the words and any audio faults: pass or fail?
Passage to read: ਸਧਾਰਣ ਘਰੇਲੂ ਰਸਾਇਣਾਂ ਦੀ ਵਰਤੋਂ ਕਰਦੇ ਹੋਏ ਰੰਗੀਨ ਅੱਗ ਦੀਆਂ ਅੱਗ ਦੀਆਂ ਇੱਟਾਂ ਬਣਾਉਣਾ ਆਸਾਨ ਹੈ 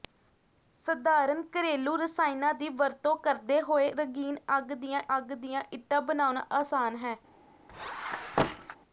fail